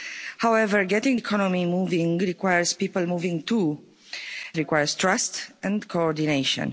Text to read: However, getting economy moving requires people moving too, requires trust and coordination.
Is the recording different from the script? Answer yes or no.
no